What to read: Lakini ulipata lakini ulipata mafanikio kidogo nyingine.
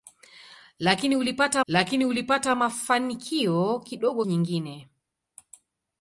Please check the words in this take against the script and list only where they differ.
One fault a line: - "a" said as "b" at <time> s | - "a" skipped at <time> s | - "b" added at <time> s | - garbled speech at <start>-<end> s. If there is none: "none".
none